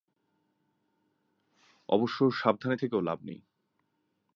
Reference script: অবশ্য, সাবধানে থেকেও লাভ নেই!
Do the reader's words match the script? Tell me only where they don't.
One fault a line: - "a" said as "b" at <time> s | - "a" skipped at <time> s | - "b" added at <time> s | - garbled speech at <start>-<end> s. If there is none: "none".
none